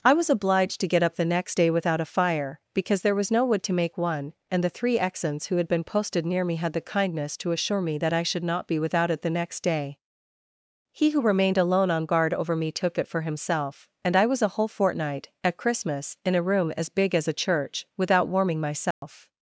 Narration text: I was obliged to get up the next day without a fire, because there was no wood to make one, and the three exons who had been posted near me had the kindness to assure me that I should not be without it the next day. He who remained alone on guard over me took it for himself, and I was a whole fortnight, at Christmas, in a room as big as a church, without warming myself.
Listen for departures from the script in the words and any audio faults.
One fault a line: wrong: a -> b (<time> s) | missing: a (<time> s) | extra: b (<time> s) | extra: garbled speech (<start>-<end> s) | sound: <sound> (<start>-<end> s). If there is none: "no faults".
sound: dropout (18.9-19.0 s)